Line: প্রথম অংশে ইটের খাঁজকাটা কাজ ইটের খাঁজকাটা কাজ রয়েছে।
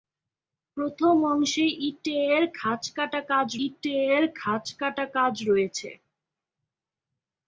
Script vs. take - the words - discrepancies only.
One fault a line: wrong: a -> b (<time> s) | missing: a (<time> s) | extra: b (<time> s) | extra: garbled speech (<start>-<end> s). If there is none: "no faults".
no faults